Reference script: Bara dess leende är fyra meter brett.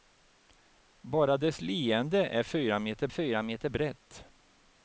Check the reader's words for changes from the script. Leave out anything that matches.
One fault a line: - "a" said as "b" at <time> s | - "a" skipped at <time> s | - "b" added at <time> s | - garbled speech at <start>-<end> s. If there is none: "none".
- "fyra meter" added at 3.1 s